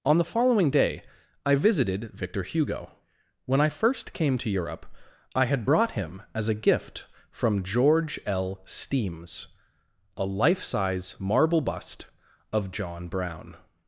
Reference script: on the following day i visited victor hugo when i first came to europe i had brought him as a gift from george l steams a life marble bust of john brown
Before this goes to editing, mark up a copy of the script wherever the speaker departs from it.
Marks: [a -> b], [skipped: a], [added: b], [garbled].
on the following day i visited victor hugo when i first came to europe i had brought him as a gift from george l steams a life [added: size] marble bust of john brown